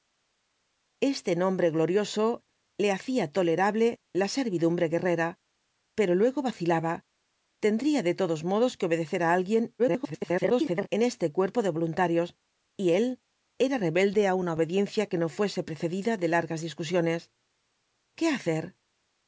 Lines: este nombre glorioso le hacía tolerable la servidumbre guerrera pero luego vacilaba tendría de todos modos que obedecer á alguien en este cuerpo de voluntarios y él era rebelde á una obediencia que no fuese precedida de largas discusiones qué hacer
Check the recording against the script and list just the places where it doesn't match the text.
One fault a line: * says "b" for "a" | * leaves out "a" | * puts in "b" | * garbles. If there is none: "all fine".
* garbles